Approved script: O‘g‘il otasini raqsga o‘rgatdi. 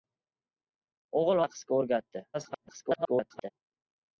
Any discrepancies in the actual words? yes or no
yes